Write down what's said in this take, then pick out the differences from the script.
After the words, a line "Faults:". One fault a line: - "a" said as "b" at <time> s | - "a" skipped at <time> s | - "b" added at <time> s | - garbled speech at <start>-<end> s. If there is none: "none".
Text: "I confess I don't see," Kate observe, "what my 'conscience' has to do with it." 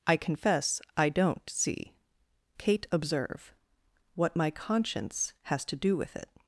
"I confess I don't see," Kate observe, "what my 'conscience' has to do with it."
Faults:
none